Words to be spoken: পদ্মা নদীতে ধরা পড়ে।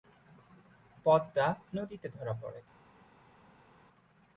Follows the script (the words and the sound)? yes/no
yes